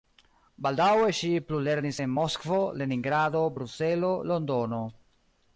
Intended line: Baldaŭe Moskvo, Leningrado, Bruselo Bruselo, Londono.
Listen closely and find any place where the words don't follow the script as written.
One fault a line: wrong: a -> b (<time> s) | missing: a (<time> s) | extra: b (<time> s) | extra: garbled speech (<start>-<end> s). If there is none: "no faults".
extra: ŝi plulernis en (1.2 s)
missing: Bruselo (4.1 s)